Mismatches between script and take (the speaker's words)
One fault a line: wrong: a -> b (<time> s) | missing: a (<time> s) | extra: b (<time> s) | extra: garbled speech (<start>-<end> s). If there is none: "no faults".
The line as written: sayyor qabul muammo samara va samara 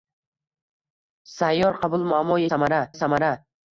no faults